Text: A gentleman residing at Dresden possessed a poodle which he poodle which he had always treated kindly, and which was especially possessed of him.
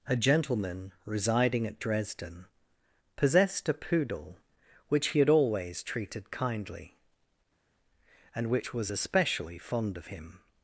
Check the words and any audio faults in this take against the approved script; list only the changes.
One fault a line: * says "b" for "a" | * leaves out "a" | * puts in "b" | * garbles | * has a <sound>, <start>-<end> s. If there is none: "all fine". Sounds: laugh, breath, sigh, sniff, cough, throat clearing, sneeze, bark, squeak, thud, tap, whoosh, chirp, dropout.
* leaves out "poodle which he"
* says "fond" for "possessed"